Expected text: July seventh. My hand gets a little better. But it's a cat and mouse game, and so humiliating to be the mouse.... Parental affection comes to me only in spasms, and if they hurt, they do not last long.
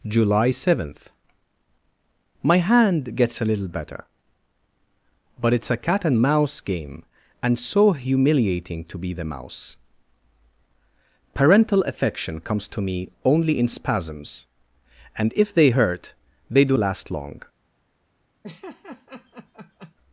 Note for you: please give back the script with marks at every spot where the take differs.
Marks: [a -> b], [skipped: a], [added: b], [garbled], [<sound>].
July seventh. My hand gets a little better. But it's a cat and mouse game, and so humiliating to be the mouse.... Parental affection comes to me only in spasms, and if they hurt, they do [skipped: not] last long. [laugh]